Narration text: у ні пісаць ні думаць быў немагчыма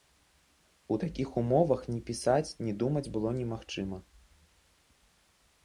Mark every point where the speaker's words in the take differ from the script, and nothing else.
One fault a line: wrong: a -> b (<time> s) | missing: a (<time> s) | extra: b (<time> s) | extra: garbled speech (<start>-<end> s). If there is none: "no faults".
extra: такіх умовах (1.0 s)
wrong: быў -> было (3.2 s)